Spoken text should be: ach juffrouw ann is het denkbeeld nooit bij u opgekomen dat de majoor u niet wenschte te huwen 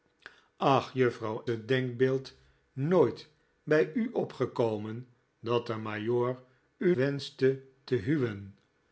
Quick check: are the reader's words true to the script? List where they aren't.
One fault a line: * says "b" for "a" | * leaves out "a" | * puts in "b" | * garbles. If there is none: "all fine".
* leaves out "ann is"
* leaves out "niet"